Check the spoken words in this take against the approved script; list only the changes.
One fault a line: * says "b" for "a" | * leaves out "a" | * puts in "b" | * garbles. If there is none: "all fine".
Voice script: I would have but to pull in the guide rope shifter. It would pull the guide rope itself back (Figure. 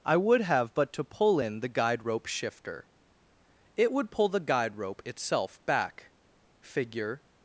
all fine